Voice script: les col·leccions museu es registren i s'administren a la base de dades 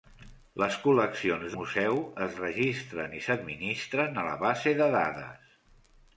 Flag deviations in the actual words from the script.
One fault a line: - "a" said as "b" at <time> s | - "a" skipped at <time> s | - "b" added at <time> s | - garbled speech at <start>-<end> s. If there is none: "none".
none